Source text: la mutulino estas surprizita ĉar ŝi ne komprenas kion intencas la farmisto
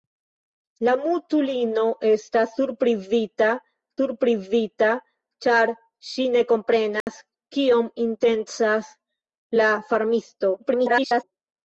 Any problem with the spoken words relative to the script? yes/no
yes